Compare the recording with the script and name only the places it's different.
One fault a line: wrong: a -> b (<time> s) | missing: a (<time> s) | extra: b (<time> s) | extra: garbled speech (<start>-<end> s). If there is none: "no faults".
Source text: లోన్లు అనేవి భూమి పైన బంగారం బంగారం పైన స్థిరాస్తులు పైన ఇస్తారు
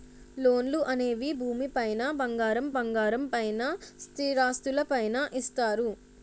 no faults